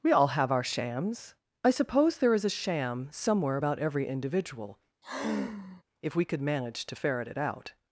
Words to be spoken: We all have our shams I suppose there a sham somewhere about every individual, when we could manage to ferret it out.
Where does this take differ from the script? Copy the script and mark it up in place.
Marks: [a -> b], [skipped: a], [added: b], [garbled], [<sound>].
We all have our shams I suppose there [added: is] a sham somewhere about every individual, [sigh] [when -> if] we could manage to ferret it out.